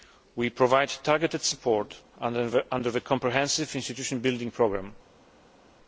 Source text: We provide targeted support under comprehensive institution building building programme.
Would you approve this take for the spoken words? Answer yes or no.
no